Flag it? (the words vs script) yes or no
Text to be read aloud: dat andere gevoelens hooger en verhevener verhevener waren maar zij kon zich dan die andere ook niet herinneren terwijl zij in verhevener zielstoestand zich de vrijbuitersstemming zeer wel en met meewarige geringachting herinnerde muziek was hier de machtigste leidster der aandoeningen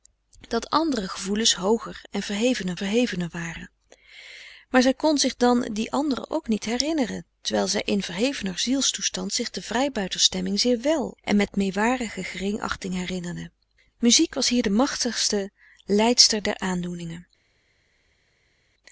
no